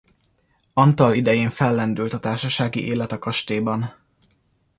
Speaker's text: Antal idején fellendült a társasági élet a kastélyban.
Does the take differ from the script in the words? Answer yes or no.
no